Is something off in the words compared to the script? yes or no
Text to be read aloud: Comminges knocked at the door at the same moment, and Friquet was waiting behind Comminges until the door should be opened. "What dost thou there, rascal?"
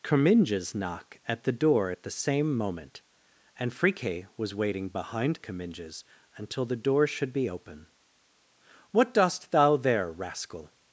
yes